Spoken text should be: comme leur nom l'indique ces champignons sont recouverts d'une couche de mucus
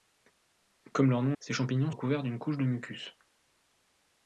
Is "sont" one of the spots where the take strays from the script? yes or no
yes